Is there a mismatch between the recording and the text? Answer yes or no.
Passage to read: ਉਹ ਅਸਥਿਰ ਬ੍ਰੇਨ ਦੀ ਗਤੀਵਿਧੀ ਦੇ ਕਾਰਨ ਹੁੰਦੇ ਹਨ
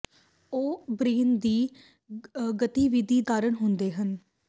yes